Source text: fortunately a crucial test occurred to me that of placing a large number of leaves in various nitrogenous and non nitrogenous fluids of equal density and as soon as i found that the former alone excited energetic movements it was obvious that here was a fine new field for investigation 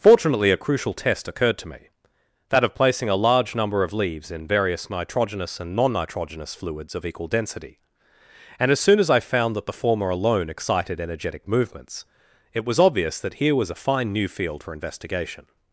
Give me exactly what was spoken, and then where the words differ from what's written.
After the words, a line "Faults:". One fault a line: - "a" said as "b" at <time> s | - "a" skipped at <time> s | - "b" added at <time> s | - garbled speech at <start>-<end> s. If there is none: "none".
fortunately a crucial test occurred to me that of placing a large number of leaves in various nitrogenous and non nitrogenous fluids of equal density and as soon as i found that the former alone excited energetic movements it was obvious that here was a fine new field for investigation
Faults:
none